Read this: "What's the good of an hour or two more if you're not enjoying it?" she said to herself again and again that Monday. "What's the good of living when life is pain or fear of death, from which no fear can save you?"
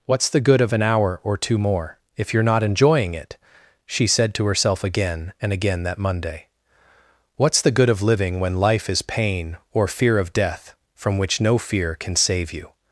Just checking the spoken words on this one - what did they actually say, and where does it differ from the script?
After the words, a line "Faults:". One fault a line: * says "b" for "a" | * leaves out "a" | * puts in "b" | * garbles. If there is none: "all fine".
"What's the good of an hour or two more if you're not enjoying it?" she said to herself again and again that Monday. "What's the good of living when life is pain or fear of death, from which no fear can save you?"
Faults:
all fine